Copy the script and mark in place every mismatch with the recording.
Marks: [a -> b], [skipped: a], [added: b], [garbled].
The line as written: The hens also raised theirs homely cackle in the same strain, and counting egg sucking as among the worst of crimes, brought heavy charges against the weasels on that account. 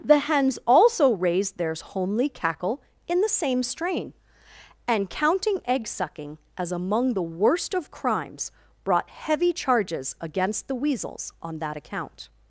The hens also raised theirs homely cackle in the same strain, and counting egg sucking as among the worst of crimes, brought heavy charges against the weasels on that account.